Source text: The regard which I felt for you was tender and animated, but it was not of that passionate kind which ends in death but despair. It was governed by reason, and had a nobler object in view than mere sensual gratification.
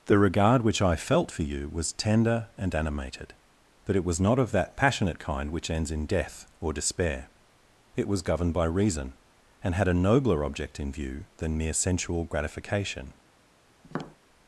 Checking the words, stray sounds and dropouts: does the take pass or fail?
fail